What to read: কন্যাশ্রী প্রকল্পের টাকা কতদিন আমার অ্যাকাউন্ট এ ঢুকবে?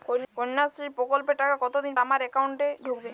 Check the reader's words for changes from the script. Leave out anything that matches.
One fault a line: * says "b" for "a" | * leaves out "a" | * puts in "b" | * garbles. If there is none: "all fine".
all fine